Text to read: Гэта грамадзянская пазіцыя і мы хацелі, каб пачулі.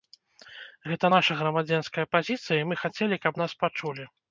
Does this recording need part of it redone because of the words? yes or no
yes